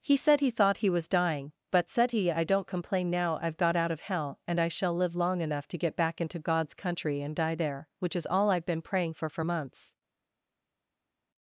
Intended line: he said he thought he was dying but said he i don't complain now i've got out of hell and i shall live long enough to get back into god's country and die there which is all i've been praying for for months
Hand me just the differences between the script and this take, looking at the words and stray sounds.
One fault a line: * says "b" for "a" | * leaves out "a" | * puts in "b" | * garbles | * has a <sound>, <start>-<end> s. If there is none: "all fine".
all fine